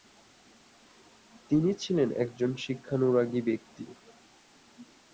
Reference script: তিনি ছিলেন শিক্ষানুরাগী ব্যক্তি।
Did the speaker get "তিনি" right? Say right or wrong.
right